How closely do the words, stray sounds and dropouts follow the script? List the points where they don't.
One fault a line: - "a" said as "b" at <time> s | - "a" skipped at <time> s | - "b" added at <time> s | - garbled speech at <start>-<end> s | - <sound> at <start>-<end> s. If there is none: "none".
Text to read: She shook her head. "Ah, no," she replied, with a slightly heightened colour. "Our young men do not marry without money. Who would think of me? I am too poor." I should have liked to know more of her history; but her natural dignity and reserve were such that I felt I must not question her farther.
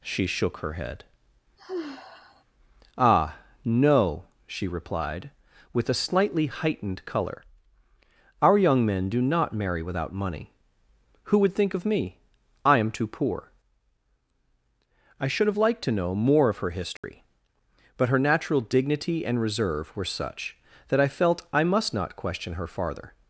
- sigh at 1.6-2.4 s
- dropout at 17.0-17.0 s